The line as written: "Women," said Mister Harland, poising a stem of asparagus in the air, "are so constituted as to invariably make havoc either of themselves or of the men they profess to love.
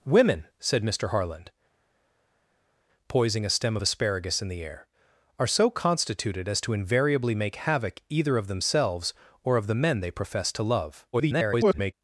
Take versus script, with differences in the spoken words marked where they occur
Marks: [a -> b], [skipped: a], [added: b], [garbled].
"Women," said Mister Harland, poising a stem of asparagus in the air, "are so constituted as to invariably make havoc either of themselves or of the men they profess to love. [garbled]